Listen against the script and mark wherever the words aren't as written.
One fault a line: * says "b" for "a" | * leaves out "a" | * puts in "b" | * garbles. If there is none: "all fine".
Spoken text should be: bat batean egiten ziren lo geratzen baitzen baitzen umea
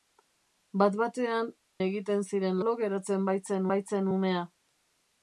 all fine